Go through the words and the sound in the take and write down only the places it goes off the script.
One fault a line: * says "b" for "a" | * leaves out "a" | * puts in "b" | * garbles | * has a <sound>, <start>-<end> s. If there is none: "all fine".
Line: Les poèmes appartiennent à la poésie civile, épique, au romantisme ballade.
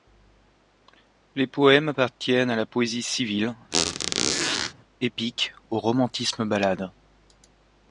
* has a squeak, 3.7-4.7 s